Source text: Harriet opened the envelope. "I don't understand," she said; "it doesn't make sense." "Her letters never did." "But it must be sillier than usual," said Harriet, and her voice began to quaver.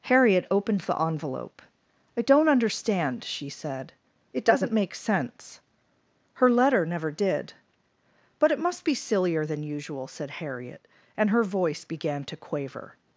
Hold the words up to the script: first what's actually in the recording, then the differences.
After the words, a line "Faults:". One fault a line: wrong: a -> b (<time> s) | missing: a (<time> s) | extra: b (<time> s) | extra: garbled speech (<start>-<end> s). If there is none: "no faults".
Harriet opened the envelope. "I don't understand," she said; "it doesn't make sense." "Her letter never did." "But it must be sillier than usual," said Harriet, and her voice began to quaver.
Faults:
wrong: letters -> letter (6.5 s)